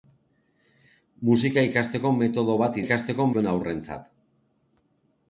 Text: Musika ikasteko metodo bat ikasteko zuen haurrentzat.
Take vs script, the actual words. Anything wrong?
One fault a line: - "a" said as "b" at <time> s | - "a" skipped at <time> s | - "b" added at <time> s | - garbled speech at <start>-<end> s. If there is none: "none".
none